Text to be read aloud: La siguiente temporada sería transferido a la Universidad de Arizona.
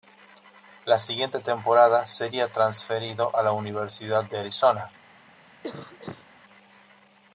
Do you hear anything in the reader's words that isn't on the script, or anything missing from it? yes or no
no